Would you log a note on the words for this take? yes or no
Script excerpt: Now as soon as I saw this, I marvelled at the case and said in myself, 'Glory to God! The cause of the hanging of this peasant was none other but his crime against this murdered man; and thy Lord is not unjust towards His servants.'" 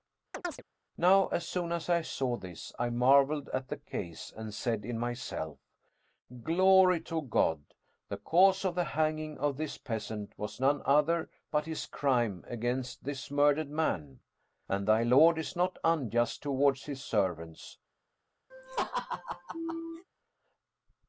no